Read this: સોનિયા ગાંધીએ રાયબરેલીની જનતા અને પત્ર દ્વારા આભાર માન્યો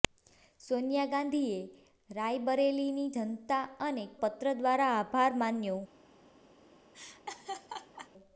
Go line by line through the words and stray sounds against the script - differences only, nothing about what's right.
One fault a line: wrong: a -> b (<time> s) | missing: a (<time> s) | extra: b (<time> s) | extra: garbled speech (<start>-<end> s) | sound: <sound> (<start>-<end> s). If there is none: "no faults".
sound: laugh (6.9-8.1 s)